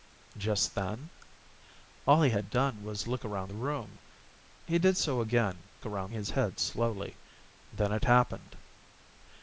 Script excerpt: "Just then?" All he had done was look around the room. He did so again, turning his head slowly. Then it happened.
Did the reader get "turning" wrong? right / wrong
wrong